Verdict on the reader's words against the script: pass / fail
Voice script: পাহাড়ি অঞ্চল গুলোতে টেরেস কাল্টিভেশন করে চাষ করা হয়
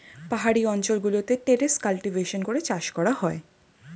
pass